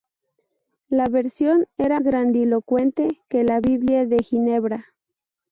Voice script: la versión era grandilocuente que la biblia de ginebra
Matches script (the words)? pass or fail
pass